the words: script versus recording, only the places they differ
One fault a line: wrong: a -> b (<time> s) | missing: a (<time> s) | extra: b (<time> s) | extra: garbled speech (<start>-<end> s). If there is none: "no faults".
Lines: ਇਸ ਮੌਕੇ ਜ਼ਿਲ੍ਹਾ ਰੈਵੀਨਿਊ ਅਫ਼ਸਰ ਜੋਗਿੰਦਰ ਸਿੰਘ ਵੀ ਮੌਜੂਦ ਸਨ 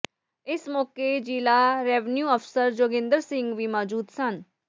no faults